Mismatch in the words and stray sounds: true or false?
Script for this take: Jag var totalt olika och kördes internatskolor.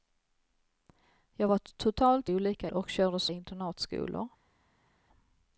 false